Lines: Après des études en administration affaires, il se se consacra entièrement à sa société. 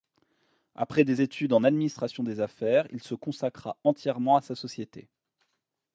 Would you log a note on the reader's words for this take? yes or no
yes